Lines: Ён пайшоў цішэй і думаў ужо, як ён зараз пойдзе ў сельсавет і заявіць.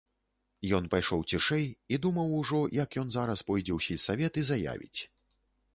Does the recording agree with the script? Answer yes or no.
yes